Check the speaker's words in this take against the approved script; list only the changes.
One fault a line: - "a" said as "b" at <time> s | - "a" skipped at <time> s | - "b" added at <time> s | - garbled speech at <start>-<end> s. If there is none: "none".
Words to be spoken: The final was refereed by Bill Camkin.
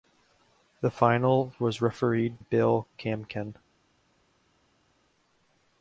- "by" skipped at 2.4 s